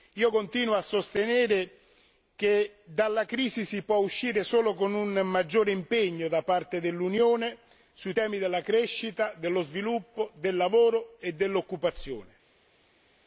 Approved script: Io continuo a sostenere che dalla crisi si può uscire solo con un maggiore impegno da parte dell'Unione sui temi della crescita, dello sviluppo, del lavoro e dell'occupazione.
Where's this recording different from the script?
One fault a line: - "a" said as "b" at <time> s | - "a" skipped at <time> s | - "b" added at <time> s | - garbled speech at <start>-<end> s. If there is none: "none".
none